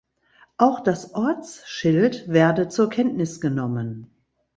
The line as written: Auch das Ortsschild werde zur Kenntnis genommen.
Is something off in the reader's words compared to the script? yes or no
no